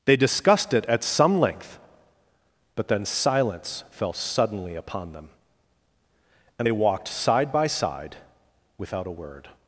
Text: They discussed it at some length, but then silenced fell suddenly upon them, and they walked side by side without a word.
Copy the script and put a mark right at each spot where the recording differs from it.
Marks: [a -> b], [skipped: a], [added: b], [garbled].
They discussed it at some length, but then [silenced -> silence] fell suddenly upon them, and they walked side by side without a word.